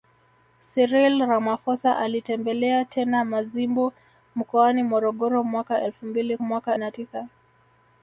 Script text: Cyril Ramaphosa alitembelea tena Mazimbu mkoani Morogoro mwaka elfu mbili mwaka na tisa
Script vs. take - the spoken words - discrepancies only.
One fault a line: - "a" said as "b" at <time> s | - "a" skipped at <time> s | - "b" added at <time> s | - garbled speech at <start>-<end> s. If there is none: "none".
none